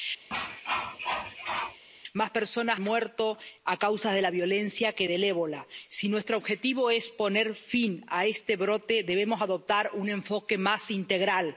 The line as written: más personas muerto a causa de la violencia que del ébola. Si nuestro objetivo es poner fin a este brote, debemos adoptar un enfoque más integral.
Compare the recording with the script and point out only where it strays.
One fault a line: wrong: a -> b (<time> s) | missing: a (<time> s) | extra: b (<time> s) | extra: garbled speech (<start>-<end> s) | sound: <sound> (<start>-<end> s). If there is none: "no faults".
sound: cough (0.3-1.8 s)